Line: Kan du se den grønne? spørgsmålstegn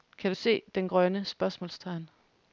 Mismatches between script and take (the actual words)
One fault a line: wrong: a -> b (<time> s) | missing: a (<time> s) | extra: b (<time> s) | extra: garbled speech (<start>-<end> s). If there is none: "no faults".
no faults